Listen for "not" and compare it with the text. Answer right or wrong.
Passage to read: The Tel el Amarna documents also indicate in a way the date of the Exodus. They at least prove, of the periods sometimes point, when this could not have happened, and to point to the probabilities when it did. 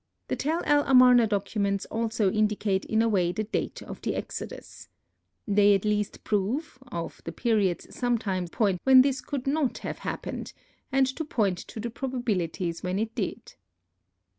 right